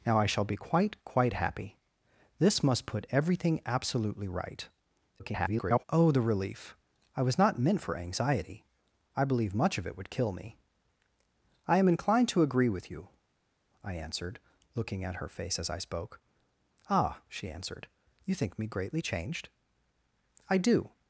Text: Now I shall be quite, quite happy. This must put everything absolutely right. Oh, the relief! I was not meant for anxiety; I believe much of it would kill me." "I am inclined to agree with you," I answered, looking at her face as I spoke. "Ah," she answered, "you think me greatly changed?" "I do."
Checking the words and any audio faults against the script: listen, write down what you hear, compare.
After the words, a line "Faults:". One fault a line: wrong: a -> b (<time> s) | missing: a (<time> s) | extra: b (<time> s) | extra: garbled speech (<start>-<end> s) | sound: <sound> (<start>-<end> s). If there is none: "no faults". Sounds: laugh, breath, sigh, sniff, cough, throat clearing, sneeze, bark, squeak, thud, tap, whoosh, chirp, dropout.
Now I shall be quite, quite happy. This must put everything absolutely right. [garbled] Oh, the relief! I was not meant for anxiety; I believe much of it would kill me." "I am inclined to agree with you," I answered, looking at her face as I spoke. "Ah," she answered, "you think me greatly changed?" "I do."
Faults:
extra: garbled speech (5.2-5.8 s)